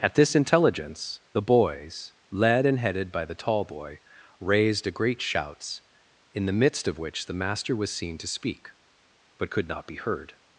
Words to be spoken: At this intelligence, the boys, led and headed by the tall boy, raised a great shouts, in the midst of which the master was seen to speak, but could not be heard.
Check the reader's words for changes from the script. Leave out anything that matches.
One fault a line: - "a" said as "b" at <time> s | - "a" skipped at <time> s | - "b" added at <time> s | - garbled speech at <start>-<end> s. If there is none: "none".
none